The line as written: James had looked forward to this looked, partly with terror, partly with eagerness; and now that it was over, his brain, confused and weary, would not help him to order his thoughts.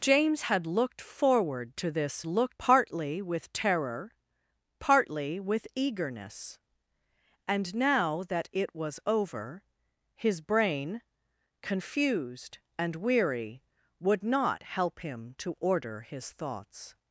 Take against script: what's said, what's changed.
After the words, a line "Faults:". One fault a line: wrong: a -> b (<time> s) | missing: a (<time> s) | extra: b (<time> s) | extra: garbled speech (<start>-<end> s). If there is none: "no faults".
James had looked forward to this looked, partly with terror, partly with eagerness; and now that it was over, his brain, confused and weary, would not help him to order his thoughts.
Faults:
no faults